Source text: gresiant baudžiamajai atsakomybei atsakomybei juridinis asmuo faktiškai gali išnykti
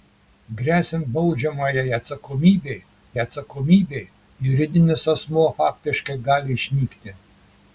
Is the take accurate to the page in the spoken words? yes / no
yes